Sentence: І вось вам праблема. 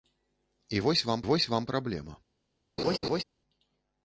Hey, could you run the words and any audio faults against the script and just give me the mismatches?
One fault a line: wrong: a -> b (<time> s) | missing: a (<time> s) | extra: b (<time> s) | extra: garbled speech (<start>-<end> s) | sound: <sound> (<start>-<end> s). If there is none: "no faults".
extra: вось вам (1.2 s)
sound: laugh (2.8-3.2 s)